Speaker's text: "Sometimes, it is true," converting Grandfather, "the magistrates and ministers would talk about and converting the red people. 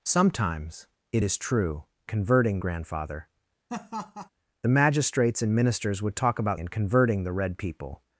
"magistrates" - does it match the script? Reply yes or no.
yes